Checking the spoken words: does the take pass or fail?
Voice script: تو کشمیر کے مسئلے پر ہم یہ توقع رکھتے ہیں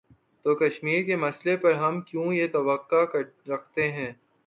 fail